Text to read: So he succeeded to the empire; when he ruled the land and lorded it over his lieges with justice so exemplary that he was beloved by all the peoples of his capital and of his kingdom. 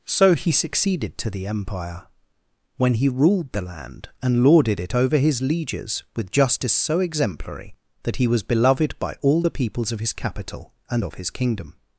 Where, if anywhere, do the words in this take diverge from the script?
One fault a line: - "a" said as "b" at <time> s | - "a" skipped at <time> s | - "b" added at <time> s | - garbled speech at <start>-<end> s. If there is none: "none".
none